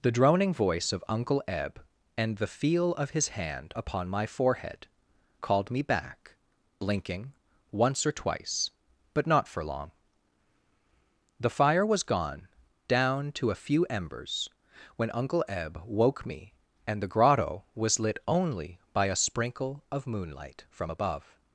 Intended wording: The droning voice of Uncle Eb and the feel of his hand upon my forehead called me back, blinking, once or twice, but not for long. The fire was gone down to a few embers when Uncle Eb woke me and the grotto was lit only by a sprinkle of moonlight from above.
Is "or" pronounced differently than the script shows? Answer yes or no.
no